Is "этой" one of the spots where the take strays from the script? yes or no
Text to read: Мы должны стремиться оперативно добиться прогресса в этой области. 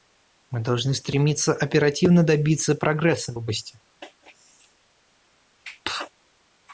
yes